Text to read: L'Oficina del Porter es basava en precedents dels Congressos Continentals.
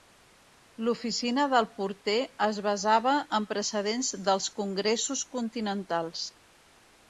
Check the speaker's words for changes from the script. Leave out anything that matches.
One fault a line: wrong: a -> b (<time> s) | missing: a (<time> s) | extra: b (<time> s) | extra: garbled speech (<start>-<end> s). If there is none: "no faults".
no faults